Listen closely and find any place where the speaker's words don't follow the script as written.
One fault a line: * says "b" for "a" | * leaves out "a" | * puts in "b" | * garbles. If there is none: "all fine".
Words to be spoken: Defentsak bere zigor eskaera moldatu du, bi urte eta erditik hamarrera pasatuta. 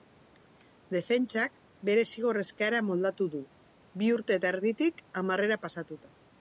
all fine